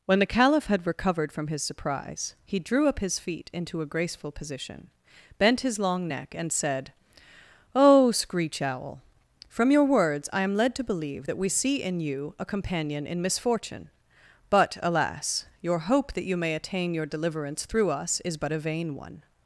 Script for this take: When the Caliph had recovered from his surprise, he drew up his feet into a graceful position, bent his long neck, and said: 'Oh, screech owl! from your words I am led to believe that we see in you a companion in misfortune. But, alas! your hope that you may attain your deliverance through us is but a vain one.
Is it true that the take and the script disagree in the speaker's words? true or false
false